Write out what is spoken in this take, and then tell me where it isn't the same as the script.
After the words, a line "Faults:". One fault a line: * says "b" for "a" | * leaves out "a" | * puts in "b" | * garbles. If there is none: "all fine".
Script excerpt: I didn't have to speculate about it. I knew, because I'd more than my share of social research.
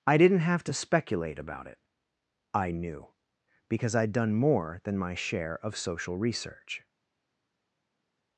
I didn't have to speculate about it. I knew, because I'd done more than my share of social research.
Faults:
* puts in "done"